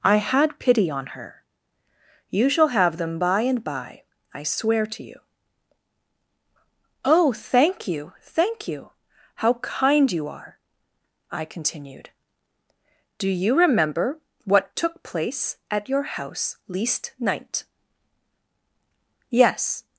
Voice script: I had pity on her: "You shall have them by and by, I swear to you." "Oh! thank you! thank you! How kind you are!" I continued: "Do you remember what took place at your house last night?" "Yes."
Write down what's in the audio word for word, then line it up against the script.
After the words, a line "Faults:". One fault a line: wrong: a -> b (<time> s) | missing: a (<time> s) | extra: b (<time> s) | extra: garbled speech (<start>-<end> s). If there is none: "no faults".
I had pity on her: "You shall have them by and by, I swear to you." "Oh! thank you! thank you! How kind you are!" I continued: "Do you remember what took place at your house least night?" "Yes."
Faults:
wrong: last -> least (16.7 s)